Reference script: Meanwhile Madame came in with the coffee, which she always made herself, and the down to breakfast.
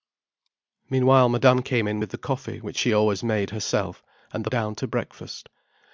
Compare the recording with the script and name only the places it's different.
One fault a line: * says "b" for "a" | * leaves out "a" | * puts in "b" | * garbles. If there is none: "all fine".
all fine